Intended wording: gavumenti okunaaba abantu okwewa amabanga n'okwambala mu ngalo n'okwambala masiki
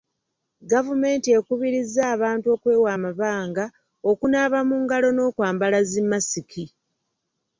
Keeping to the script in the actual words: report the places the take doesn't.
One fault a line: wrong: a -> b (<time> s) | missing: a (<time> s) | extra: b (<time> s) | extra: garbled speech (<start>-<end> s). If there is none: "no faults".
wrong: okunaaba -> ekubirizza (1.4 s)
wrong: n'okwambala -> okunaaba (4.1 s)
extra: zi (5.9 s)